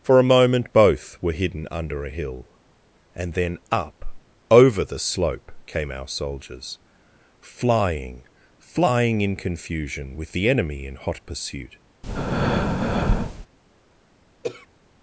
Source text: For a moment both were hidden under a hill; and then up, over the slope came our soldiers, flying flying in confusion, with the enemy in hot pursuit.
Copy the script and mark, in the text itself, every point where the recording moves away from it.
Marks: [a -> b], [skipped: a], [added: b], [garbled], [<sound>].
For a moment both were hidden under a hill; and then up, over the slope came our soldiers, flying flying in confusion, with the enemy in hot pursuit. [breath] [throat clearing]